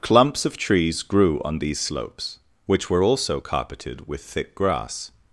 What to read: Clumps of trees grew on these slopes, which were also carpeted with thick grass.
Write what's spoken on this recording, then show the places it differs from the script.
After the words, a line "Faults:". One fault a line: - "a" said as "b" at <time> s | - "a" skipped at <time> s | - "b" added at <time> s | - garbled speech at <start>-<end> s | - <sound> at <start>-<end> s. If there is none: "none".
Clumps of trees grew on these slopes, which were also carpeted with thick grass.
Faults:
none